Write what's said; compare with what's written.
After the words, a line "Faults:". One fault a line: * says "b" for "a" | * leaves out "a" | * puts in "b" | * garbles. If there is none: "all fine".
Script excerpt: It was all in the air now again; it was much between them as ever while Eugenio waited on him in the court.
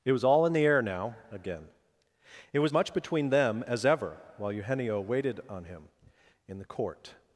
It was all in the air now again; it was much between them as ever while Eugenio waited on him in the court.
Faults:
all fine